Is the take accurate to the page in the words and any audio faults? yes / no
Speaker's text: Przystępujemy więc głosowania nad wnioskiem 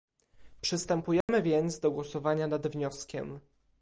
no